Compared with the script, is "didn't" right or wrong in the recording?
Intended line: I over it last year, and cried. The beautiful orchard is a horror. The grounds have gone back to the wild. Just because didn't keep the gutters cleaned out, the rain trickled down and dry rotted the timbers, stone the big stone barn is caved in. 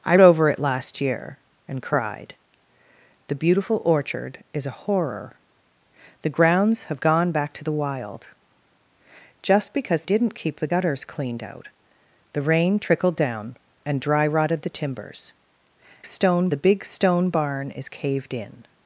right